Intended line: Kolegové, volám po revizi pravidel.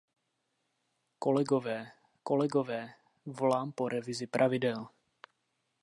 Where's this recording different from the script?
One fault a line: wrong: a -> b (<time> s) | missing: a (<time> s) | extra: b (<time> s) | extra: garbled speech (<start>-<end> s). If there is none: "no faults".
extra: kolegové (2.2 s)